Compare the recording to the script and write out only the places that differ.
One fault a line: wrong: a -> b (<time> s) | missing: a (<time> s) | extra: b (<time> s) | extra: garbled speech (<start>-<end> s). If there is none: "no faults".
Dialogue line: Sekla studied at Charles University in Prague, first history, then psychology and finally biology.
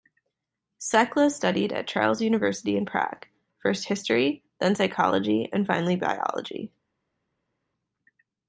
no faults